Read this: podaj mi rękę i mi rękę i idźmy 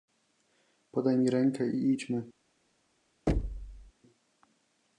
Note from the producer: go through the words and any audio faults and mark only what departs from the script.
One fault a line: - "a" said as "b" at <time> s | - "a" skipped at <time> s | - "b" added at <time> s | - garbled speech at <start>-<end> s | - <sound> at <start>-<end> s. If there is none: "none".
- "mi rękę i" skipped at 1.9 s
- thud at 3.3-3.9 s